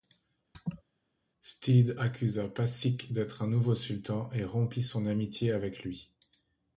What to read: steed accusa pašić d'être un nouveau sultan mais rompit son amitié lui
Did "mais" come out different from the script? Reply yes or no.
yes